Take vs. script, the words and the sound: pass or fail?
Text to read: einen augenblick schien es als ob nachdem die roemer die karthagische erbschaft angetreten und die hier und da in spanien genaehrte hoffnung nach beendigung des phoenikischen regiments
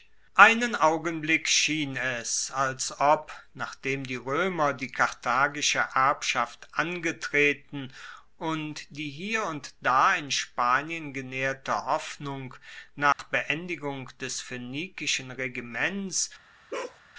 fail